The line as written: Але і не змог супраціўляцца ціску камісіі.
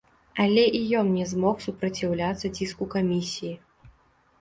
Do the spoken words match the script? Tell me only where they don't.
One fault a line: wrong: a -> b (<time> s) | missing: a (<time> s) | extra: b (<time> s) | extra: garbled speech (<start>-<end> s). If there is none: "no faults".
extra: ён (1.0 s)